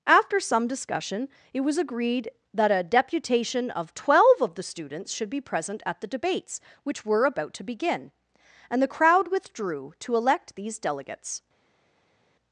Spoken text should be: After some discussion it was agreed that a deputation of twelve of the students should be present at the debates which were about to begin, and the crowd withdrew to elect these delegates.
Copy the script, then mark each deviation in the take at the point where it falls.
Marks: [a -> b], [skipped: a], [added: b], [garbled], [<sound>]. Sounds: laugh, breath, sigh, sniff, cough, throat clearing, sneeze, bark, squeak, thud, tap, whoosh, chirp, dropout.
After some discussion it was agreed that a deputation of twelve of the students should be present at the debates which were about to begin, and the crowd withdrew to elect these delegates.